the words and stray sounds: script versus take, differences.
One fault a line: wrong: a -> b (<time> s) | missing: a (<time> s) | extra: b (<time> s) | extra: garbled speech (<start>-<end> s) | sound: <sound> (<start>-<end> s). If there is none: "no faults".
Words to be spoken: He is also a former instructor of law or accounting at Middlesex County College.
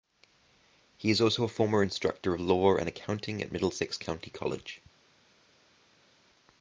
wrong: or -> and (2.8 s)